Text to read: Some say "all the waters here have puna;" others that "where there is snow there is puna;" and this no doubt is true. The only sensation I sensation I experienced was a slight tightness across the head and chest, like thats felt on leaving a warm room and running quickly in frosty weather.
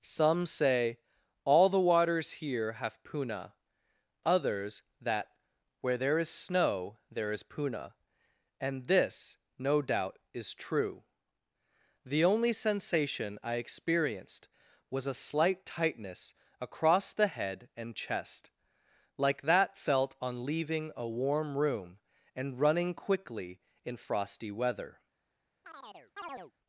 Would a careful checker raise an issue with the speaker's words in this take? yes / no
yes